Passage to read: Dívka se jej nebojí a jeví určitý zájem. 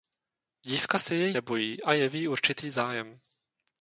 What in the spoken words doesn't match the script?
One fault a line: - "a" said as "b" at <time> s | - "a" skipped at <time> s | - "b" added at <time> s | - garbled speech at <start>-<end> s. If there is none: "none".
none